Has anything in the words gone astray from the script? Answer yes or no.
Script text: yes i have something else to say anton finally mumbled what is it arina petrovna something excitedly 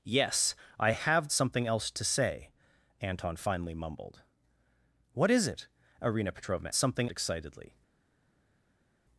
no